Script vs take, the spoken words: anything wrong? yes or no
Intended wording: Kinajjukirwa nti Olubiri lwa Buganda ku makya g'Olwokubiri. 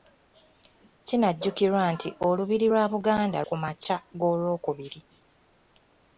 no